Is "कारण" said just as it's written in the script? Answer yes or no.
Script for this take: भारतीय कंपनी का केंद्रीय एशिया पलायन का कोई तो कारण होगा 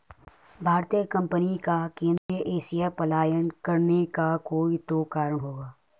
yes